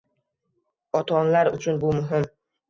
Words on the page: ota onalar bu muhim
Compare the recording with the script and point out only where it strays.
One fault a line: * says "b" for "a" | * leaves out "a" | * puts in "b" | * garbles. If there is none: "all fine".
* puts in "uchun"